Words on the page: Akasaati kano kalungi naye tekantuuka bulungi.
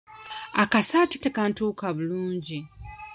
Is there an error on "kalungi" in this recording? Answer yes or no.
yes